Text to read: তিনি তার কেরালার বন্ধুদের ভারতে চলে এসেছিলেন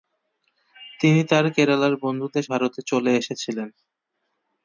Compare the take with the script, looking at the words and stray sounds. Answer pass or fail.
pass